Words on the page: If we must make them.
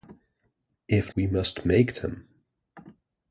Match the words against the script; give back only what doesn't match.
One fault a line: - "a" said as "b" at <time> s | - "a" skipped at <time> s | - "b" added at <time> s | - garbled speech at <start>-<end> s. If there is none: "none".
none